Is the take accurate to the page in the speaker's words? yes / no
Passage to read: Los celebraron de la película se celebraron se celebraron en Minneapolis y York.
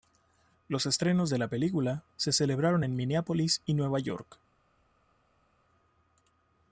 no